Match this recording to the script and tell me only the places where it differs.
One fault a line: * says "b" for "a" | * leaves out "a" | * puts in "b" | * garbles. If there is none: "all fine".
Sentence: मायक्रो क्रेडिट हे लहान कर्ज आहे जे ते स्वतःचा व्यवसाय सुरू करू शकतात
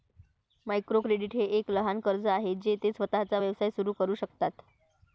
* puts in "एक"